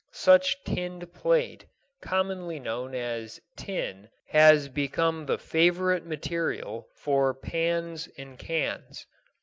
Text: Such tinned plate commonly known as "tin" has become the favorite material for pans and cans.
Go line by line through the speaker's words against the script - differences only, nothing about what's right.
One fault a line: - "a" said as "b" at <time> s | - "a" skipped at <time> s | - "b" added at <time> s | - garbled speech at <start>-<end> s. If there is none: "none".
none